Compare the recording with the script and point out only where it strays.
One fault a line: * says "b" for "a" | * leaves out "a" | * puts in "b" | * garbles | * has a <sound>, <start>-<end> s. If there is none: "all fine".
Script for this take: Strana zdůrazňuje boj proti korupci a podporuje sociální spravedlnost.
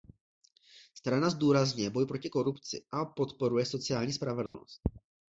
* has a dropout, 4.5-4.5 s